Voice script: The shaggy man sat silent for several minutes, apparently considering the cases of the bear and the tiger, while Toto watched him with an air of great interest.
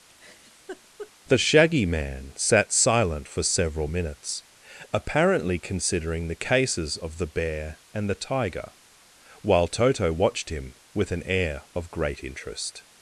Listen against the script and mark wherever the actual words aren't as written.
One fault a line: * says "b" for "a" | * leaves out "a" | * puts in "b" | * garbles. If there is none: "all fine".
all fine